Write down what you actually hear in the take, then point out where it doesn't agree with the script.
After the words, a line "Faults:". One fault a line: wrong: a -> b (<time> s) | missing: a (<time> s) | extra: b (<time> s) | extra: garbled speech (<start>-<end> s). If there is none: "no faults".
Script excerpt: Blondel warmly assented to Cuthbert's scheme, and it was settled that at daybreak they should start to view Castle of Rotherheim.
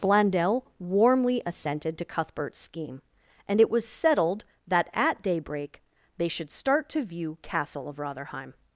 Blondel warmly assented to Cuthbert's scheme, and it was settled that at daybreak they should start to view Castle of Rotherheim.
Faults:
no faults